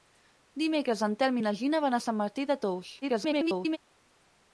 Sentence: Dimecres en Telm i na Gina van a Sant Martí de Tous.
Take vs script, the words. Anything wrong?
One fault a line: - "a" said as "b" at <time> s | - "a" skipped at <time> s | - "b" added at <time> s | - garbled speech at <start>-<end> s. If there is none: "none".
- garbled speech at 3.0-3.8 s